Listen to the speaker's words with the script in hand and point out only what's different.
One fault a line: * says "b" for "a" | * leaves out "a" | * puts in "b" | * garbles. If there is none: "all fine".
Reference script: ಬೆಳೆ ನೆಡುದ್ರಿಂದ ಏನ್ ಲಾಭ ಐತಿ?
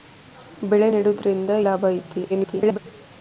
* leaves out "ಏನ್"
* garbles